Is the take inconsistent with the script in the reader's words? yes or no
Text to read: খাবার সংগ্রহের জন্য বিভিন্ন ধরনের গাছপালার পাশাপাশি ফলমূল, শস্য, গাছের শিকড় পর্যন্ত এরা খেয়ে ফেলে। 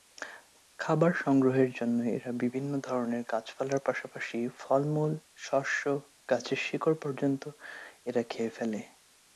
yes